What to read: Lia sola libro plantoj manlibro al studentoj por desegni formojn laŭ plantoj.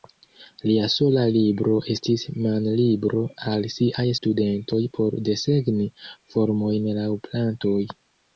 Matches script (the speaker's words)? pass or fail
fail